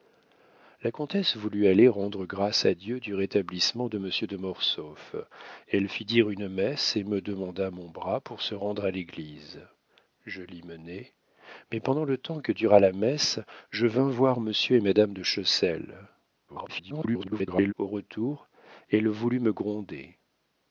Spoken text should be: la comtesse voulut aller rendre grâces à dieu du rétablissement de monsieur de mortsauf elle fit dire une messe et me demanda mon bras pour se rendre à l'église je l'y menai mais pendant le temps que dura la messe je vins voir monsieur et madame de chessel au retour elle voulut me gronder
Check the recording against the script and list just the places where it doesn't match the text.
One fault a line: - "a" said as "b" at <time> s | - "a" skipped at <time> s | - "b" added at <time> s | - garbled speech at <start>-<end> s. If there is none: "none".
- garbled speech at 16.5-17.7 s